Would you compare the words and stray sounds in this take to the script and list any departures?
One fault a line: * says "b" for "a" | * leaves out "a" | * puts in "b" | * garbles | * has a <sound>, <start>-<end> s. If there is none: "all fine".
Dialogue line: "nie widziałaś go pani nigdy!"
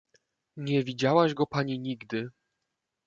all fine